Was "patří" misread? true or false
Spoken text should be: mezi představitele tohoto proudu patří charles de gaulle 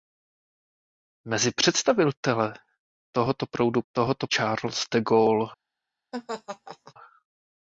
true